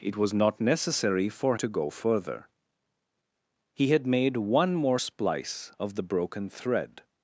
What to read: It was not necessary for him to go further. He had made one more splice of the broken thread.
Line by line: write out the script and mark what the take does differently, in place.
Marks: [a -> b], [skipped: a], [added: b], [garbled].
It was not necessary for [skipped: him] to go further. He had made one more splice of the broken thread.